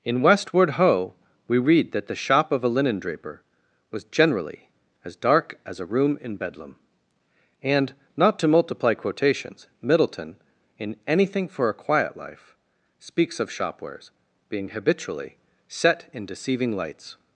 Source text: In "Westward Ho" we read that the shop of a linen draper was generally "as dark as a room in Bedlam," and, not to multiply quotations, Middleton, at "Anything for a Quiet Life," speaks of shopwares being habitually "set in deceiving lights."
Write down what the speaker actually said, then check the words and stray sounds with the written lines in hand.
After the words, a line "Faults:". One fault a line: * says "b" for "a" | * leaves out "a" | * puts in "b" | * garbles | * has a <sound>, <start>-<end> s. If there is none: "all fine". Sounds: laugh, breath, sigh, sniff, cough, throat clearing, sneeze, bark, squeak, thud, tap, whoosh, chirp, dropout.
In "Westward Ho" we read that the shop of a linen draper was generally "as dark as a room in Bedlam," and, not to multiply quotations, Middleton, in "Anything for a Quiet Life," speaks of shopwares being habitually "set in deceiving lights."
Faults:
* says "in" for "at"